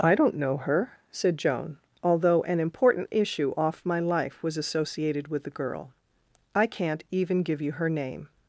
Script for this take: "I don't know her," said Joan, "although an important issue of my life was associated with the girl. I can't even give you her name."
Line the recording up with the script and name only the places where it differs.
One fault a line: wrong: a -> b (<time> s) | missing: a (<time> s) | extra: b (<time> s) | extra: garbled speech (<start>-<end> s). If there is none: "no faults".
wrong: of -> off (3.6 s)